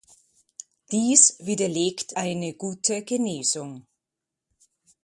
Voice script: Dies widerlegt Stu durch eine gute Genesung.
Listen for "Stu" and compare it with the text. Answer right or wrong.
wrong